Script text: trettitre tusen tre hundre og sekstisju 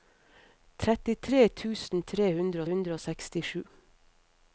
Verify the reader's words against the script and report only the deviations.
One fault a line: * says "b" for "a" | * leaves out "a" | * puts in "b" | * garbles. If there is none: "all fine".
* puts in "hundre"